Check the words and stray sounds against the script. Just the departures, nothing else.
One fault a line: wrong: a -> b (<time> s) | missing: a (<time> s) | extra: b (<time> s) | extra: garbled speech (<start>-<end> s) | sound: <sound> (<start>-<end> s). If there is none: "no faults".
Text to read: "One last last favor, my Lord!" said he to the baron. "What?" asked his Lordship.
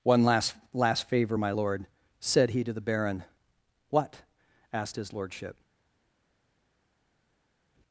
no faults